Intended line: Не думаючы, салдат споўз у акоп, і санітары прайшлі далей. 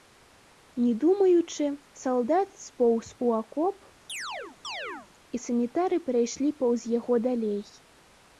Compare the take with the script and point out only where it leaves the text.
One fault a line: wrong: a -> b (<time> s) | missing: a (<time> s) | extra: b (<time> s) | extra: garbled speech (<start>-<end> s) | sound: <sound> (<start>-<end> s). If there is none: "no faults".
sound: chirp (4.1-5.1 s)
extra: паўз яго (6.7 s)